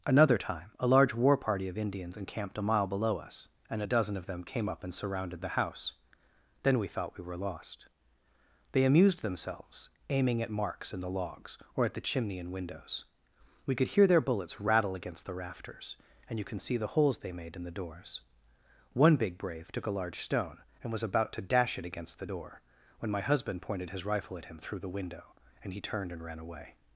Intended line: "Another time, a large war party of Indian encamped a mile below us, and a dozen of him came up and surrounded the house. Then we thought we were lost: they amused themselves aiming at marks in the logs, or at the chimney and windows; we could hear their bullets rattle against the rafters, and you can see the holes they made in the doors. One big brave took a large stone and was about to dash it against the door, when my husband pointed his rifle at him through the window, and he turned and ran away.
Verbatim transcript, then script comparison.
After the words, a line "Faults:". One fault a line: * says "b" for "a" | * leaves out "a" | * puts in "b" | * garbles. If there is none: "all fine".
"Another time, a large war party of Indians encamped a mile below us, and a dozen of them came up and surrounded the house. Then we thought we were lost: they amused themselves aiming at marks in the logs, or at the chimney and windows; we could hear their bullets rattle against the rafters, and you can see the holes they made in the doors. One big brave took a large stone and was about to dash it against the door, when my husband pointed his rifle at him through the window, and he turned and ran away.
Faults:
* says "Indians" for "Indian"
* says "them" for "him"